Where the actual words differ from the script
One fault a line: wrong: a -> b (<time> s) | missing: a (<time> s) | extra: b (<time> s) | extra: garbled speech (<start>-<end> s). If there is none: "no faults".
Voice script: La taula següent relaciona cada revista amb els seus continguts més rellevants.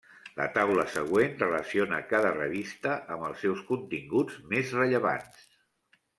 no faults